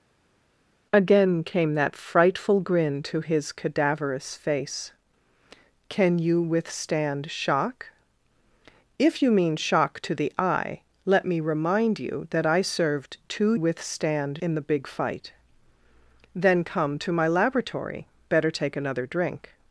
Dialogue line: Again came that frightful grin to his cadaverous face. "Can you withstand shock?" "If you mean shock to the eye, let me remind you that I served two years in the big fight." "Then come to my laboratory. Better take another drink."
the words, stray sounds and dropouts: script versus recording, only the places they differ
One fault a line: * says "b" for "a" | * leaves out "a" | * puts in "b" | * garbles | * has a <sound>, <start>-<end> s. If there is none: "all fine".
* says "withstand" for "years"